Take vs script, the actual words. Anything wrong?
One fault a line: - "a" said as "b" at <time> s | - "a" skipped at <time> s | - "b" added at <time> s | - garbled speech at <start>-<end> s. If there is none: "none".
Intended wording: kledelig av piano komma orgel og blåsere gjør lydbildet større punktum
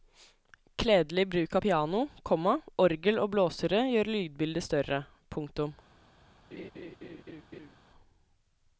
- "bruk" added at 1.3 s